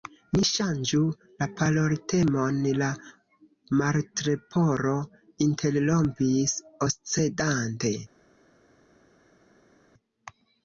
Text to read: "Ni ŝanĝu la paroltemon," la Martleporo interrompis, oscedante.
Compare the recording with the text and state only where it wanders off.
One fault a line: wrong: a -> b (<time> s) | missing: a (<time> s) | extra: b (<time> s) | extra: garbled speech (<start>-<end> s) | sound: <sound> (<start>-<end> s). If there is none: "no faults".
no faults